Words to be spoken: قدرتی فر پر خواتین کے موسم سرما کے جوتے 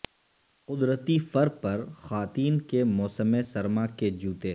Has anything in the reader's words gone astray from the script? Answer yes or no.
no